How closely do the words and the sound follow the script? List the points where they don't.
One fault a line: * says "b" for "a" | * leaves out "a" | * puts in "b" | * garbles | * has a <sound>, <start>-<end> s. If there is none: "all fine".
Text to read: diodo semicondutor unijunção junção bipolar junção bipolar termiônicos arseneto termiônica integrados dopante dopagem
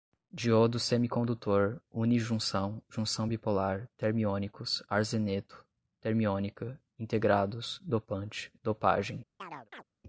* leaves out "junção bipolar"
* has a chirp, 9.4-9.8 s